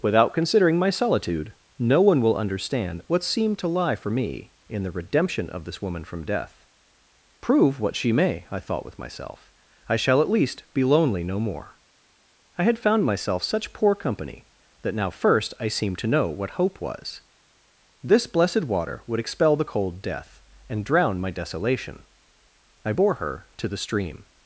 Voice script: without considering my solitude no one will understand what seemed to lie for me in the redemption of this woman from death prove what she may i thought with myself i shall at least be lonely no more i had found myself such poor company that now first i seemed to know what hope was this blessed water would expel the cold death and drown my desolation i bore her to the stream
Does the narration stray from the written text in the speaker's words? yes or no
no